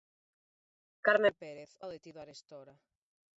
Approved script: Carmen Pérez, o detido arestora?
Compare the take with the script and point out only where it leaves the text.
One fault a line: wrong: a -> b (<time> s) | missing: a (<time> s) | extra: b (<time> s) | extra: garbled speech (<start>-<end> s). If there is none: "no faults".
no faults